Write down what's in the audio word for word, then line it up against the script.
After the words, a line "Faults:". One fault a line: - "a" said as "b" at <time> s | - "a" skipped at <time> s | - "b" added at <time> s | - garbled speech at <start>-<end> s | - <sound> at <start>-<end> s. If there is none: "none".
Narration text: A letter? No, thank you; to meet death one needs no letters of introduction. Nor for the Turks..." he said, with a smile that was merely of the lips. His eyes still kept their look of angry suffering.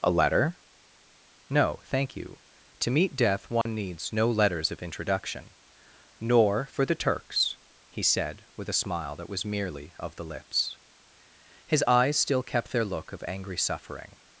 A letter? No, thank you; to meet death one needs no letters of introduction. Nor for the Turks..." he said, with a smile that was merely of the lips. His eyes still kept their look of angry suffering.
Faults:
- dropout at 3.6-3.7 s